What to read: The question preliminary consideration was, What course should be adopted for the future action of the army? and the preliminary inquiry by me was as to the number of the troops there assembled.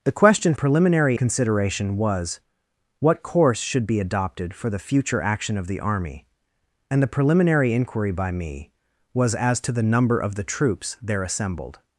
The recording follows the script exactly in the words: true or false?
true